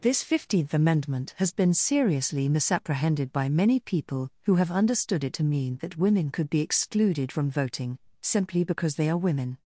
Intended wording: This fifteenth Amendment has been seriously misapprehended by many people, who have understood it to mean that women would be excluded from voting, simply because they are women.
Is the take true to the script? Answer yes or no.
no